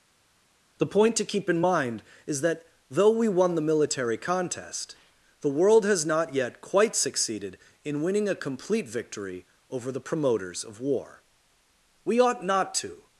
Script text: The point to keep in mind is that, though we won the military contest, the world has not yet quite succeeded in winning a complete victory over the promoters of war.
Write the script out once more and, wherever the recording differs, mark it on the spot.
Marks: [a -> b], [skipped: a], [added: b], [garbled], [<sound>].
The point to keep in mind is that, though we won the military contest, the world has not yet quite succeeded in winning a complete victory over the promoters of war. [added: We ought not to]